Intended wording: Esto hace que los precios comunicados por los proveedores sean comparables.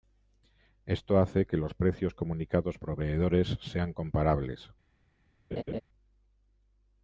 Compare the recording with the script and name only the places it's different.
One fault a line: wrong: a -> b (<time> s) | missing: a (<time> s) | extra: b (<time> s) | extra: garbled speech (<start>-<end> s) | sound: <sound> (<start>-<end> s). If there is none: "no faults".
missing: por los (2.8 s)
sound: laugh (5.5-5.8 s)